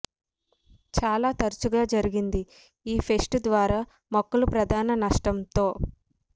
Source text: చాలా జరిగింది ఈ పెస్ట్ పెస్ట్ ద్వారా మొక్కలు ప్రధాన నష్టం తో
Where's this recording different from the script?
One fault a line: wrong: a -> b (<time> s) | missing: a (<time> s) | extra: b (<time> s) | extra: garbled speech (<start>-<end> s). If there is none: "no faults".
extra: తరచుగా (1.4 s)
missing: పెస్ట్ (3.4 s)